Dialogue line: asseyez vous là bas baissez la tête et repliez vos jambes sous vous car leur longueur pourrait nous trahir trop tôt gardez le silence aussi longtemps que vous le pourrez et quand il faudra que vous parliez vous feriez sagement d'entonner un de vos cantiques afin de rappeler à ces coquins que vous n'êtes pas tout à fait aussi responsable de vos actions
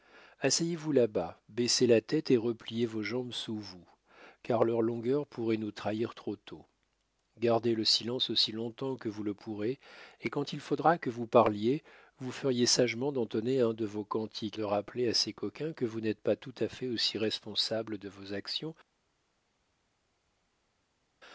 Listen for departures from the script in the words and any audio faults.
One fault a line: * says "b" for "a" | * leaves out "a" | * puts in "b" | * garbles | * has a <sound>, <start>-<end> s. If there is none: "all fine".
* leaves out "afin"